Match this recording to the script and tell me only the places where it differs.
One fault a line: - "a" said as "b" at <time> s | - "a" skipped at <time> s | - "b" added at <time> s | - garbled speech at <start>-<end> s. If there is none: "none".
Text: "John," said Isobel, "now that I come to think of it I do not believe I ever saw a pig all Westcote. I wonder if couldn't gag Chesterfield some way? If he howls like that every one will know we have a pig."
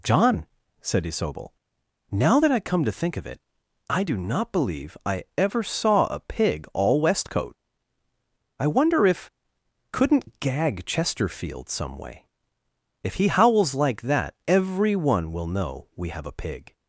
none